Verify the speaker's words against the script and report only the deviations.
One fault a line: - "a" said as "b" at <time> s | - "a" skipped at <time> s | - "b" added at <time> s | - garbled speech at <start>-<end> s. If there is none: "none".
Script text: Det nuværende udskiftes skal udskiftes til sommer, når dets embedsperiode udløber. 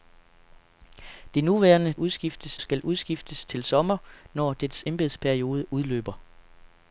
none